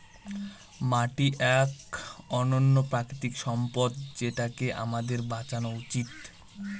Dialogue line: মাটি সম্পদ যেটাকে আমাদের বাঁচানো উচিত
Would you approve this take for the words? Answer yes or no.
no